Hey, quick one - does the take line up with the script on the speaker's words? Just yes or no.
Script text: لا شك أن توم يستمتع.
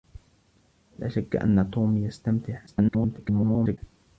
no